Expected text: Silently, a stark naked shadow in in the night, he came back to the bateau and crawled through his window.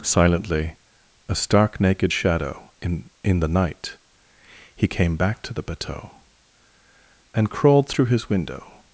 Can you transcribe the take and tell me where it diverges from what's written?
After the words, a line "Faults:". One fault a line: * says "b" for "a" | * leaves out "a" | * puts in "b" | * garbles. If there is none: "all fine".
Silently, a stark naked shadow in in the night, he came back to the bateau and crawled through his window.
Faults:
all fine